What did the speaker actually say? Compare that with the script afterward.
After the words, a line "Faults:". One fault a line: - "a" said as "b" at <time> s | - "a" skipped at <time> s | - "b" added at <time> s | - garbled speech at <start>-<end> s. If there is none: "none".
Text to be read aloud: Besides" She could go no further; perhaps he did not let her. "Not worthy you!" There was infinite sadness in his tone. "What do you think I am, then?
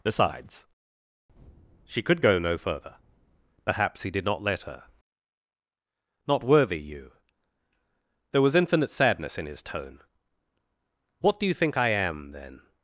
Besides" She could go no further; perhaps he did not let her. "Not worthy you!" There was infinite sadness in his tone. "What do you think I am, then?
Faults:
none